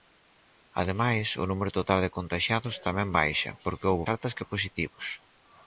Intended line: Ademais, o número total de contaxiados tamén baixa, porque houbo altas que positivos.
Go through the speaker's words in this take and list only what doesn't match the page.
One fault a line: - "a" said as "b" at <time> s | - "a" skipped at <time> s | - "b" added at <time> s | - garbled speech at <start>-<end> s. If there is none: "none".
none